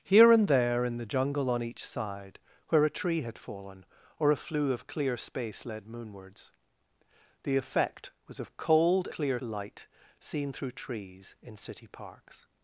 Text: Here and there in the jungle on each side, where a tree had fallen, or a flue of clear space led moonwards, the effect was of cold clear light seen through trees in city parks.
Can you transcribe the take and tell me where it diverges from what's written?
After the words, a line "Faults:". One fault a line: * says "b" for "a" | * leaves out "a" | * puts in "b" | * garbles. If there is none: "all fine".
Here and there in the jungle on each side, where a tree had fallen, or a flue of clear space led moonwards, the effect was of cold clear light seen through trees in city parks.
Faults:
all fine